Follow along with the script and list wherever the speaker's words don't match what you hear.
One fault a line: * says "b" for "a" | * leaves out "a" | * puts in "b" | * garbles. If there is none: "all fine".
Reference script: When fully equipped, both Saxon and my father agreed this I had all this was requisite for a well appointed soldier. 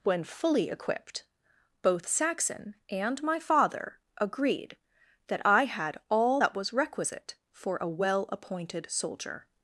* says "that" for "this"
* says "that" for "this"